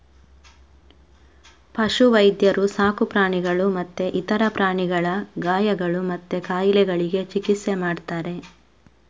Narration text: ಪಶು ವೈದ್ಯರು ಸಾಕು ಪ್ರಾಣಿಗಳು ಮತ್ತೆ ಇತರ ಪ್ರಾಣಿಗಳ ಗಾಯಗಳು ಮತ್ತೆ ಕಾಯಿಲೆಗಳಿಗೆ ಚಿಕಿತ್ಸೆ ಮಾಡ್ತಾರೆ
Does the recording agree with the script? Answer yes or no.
yes